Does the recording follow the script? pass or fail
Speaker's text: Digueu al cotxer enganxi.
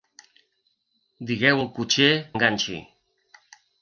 pass